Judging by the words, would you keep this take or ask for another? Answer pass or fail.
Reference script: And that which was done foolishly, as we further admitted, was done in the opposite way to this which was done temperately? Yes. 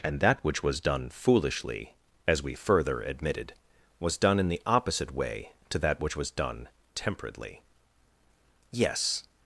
fail